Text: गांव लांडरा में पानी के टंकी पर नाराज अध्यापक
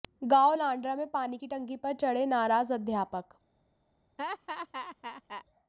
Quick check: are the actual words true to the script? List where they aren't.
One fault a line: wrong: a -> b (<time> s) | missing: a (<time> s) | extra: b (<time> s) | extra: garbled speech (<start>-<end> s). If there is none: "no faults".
wrong: के -> की (1.3 s)
extra: चढ़े (1.9 s)